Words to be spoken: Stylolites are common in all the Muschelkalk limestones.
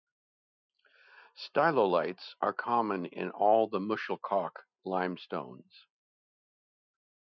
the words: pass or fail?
pass